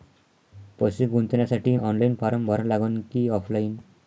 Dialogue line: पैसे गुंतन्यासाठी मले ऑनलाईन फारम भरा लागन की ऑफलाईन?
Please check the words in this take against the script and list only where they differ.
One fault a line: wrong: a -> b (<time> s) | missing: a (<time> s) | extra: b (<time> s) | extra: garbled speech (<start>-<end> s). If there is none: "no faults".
missing: मले (1.8 s)